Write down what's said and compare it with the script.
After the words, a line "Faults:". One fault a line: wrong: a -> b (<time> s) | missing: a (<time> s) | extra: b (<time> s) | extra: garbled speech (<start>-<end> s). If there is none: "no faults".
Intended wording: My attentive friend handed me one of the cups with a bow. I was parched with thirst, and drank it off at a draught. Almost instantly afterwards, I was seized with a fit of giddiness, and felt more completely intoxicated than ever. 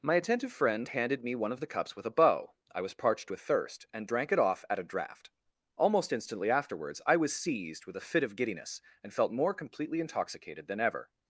My attentive friend handed me one of the cups with a bow. I was parched with thirst, and drank it off at a draught. Almost instantly afterwards, I was seized with a fit of giddiness, and felt more completely intoxicated than ever.
Faults:
no faults